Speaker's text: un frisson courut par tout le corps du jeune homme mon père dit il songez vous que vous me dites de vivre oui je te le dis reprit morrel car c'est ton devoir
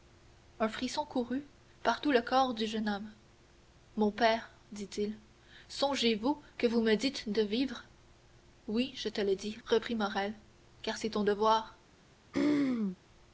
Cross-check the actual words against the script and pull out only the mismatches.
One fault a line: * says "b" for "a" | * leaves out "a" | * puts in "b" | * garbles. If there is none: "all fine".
all fine